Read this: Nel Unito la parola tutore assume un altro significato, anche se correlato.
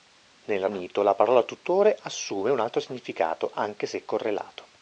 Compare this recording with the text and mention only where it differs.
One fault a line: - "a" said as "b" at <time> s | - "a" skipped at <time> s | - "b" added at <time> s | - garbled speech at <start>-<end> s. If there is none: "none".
none